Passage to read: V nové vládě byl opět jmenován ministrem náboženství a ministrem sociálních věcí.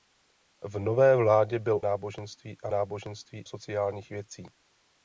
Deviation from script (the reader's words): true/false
true